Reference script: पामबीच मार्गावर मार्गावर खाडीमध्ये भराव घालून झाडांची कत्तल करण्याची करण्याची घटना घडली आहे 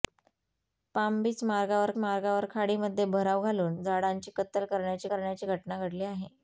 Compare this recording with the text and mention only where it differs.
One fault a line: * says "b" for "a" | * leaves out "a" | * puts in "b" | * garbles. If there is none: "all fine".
all fine